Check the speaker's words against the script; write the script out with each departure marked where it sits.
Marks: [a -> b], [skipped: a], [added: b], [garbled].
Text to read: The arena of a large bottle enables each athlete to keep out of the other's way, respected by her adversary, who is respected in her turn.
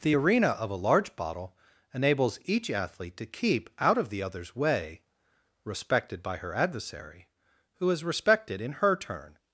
The arena of a large bottle enables each athlete to keep out of the other's way, respected by her adversary, who is respected in her turn.